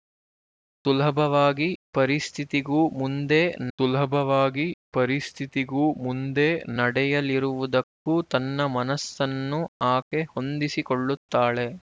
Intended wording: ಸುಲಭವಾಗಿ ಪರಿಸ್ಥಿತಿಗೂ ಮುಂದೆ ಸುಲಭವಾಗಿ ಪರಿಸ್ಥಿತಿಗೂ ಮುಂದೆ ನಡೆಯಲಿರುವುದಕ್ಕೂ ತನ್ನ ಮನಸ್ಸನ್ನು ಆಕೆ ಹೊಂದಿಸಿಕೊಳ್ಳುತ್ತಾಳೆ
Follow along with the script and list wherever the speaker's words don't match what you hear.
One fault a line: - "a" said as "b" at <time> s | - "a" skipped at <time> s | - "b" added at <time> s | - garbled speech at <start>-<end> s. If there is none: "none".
none